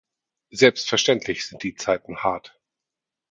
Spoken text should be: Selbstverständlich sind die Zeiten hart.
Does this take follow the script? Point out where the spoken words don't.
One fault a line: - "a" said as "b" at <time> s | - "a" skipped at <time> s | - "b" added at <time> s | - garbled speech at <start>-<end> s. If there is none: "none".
none